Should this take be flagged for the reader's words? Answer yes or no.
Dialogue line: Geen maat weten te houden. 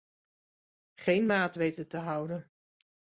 no